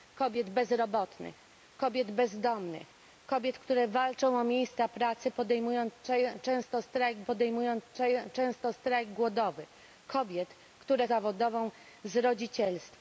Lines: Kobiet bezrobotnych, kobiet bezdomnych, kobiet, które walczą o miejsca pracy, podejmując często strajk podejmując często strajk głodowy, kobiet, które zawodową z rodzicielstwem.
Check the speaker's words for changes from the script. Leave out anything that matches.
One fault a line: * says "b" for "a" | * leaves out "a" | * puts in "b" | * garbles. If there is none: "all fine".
all fine